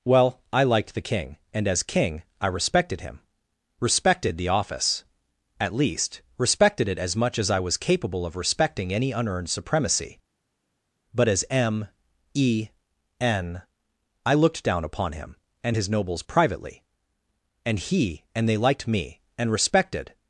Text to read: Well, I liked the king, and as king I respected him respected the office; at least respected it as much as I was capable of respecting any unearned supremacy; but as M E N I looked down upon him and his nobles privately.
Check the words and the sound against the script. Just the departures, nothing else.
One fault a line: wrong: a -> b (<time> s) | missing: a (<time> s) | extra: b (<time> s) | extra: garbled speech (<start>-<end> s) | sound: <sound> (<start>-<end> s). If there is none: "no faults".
extra: And he and they liked me and respected (17.6 s)